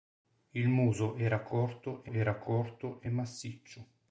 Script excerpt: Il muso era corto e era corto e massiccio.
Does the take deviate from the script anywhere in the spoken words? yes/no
no